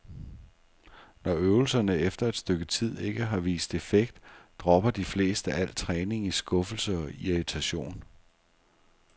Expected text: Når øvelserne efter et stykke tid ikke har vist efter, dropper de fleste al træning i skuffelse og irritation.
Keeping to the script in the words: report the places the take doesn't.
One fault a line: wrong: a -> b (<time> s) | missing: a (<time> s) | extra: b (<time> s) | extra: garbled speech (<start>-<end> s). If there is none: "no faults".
wrong: efter -> effekt (3.8 s)